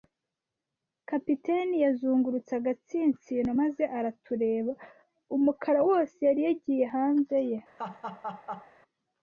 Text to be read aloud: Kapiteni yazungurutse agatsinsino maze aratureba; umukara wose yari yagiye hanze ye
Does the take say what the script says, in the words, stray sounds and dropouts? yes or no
no